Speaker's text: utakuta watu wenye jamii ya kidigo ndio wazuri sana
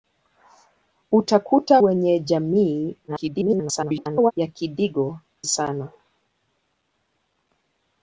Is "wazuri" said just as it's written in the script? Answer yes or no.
no